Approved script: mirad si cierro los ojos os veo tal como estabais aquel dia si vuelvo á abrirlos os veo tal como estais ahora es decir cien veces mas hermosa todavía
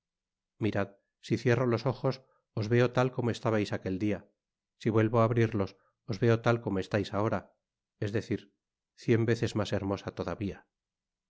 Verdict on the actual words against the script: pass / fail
pass